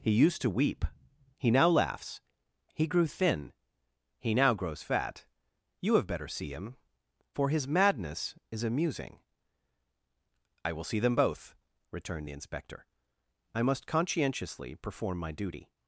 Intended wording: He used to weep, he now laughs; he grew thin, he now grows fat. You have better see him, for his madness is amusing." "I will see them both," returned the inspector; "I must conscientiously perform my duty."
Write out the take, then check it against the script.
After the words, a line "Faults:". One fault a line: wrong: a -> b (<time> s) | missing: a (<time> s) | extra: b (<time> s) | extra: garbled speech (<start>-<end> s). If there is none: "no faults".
He used to weep, he now laughs; he grew thin, he now grows fat. You have better see him, for his madness is amusing." "I will see them both," returned the inspector; "I must conscientiously perform my duty."
Faults:
no faults